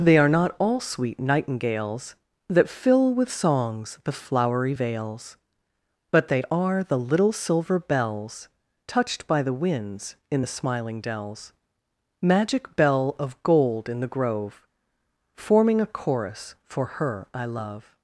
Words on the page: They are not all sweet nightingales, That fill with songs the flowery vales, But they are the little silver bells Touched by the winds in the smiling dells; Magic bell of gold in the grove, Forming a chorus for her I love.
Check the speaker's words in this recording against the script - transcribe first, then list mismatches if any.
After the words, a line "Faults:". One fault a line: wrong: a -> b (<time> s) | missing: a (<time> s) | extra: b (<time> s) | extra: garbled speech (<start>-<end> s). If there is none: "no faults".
They are not all sweet nightingales, That fill with songs the flowery vales, But they are the little silver bells Touched by the winds in the smiling dells; Magic bell of gold in the grove, Forming a chorus for her I love.
Faults:
no faults